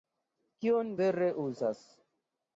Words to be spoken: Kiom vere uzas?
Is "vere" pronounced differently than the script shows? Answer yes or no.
no